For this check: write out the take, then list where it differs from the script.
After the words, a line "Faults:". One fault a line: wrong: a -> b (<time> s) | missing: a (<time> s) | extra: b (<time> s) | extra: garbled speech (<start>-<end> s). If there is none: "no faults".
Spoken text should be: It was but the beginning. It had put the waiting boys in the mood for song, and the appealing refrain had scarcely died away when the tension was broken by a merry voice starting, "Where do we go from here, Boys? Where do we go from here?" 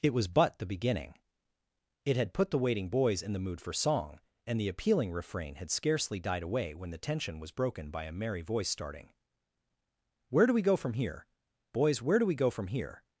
It was but the beginning. It had put the waiting boys in the mood for song, and the appealing refrain had scarcely died away when the tension was broken by a merry voice starting, "Where do we go from here, Boys? Where do we go from here?"
Faults:
no faults